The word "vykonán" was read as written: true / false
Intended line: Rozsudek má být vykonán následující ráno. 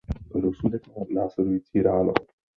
false